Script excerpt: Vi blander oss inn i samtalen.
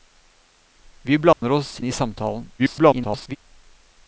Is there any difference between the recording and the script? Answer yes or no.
yes